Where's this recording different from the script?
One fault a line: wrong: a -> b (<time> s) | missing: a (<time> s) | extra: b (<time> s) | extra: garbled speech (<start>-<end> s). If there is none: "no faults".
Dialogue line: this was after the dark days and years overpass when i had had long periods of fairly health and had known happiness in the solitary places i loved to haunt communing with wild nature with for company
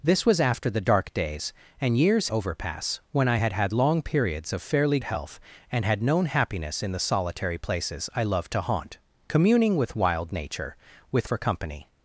no faults